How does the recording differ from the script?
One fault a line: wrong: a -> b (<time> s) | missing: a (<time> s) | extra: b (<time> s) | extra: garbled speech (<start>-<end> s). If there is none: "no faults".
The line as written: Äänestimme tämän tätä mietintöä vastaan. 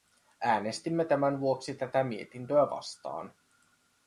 extra: vuoksi (1.4 s)